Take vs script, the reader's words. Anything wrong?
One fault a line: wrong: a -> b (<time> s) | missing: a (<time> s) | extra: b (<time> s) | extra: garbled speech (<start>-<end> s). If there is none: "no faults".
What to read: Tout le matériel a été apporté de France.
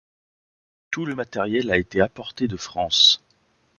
no faults